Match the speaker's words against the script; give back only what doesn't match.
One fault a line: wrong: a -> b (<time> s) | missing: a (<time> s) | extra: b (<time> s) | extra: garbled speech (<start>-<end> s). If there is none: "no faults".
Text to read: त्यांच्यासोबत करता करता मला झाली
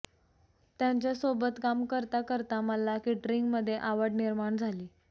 extra: काम (1.6 s)
extra: केटरिंगमध्ये आवड निर्माण (3.0 s)